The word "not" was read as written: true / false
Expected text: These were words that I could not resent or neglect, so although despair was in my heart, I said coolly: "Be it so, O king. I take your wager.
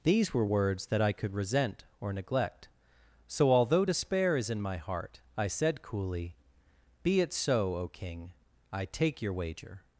false